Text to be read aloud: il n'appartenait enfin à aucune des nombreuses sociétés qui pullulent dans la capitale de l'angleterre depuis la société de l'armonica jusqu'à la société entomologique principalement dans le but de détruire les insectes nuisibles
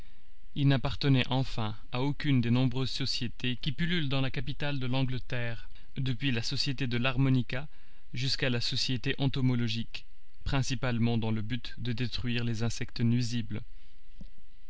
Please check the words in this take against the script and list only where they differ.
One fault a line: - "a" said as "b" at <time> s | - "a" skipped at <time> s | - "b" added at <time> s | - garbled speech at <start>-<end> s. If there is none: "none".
none